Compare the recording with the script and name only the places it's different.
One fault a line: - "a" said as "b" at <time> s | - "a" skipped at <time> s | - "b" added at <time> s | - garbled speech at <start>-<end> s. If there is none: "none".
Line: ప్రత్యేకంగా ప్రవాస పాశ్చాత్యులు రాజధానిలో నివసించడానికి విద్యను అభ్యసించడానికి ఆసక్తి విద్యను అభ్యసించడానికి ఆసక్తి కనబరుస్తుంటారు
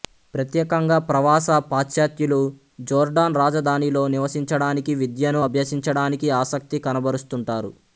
- "జోర్డాన్" added at 2.8 s
- "విద్యను అభ్యసించడానికి ఆసక్తి" skipped at 6.8 s